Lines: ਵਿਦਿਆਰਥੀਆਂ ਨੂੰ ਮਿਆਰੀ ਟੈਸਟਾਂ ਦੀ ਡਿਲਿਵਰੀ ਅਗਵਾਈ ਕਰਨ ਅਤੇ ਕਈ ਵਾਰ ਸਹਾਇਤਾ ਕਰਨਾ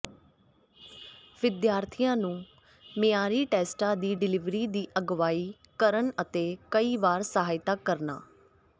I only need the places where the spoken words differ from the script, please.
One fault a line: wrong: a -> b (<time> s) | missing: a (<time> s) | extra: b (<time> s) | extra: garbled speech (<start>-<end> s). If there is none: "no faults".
extra: ਦੀ (4.7 s)